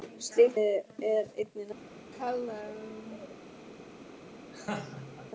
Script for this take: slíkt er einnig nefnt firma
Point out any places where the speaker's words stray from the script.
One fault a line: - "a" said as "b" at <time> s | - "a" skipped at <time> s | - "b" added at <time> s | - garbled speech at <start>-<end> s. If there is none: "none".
none